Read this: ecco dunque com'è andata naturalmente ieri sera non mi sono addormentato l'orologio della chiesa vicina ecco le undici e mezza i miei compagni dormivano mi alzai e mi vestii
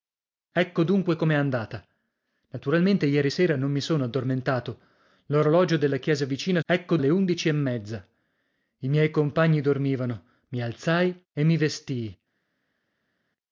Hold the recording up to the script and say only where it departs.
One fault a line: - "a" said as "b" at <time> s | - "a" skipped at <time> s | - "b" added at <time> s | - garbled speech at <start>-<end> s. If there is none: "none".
none